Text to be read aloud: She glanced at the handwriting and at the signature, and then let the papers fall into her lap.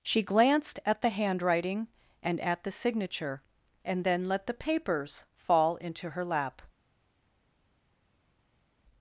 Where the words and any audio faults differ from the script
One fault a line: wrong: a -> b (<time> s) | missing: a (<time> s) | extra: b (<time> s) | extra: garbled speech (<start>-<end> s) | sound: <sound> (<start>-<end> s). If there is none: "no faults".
no faults